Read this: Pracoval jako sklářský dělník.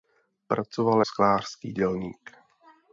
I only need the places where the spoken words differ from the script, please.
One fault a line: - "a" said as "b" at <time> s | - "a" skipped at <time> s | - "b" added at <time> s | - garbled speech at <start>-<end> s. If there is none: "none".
- "jako" skipped at 1.0 s